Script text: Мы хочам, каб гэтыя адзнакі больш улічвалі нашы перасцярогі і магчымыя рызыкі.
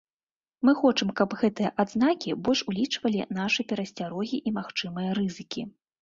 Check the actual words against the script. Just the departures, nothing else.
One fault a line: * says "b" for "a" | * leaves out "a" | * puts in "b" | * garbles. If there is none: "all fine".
all fine